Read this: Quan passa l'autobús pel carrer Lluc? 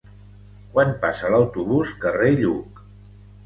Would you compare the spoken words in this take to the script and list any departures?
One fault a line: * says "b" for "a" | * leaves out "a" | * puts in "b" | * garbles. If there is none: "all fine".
* leaves out "pel"